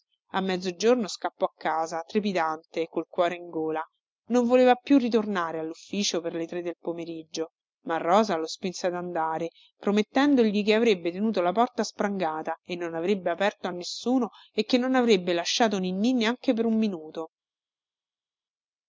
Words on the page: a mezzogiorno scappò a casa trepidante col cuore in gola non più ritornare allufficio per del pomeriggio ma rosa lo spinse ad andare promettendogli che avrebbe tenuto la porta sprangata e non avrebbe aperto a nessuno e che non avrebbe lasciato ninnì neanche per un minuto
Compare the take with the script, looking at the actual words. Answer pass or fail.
fail